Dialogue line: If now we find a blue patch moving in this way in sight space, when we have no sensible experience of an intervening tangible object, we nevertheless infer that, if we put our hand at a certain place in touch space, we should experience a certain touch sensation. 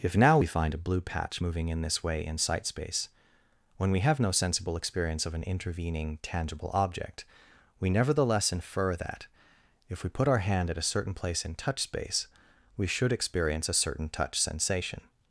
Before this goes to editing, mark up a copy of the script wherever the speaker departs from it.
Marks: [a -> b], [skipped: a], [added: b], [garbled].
If now we find a blue patch moving in this way in sight space, when we have no sensible experience of an intervening tangible object, we nevertheless infer that, if we put our hand at a certain place in touch space, we should experience a certain touch sensation.